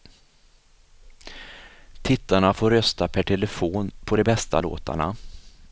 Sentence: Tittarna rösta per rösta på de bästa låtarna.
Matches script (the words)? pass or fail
fail